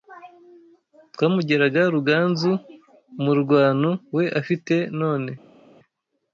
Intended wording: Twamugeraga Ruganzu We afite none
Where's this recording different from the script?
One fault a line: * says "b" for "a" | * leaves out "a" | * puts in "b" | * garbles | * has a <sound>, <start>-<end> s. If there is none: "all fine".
* puts in "Umurwano"